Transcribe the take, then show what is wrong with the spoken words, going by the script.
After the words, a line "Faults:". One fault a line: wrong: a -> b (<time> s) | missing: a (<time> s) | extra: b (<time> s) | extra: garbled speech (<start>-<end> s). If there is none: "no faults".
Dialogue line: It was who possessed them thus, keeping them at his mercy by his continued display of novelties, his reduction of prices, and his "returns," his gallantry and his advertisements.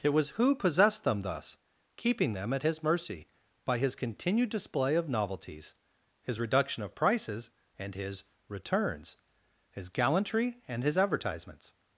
It was who possessed them thus, keeping them at his mercy by his continued display of novelties, his reduction of prices, and his "returns," his gallantry and his advertisements.
Faults:
no faults